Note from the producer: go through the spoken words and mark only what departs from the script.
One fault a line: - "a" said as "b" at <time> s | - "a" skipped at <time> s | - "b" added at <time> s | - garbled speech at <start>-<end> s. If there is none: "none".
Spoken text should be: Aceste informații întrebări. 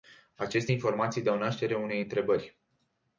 - "dau naștere unei" added at 1.2 s